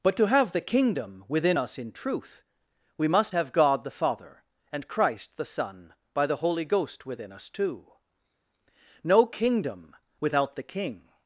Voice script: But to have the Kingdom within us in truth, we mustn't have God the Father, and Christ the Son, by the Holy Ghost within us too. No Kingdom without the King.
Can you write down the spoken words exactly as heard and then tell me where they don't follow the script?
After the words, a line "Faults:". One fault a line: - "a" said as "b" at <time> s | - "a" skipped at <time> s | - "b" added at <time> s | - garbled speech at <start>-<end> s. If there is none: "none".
But to have the Kingdom within us in truth, we must have God the Father, and Christ the Son, by the Holy Ghost within us too. No Kingdom without the King.
Faults:
- "mustn't" said as "must" at 3.1 s